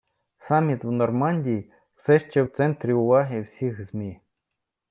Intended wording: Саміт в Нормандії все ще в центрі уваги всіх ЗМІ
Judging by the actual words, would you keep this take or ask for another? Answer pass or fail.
pass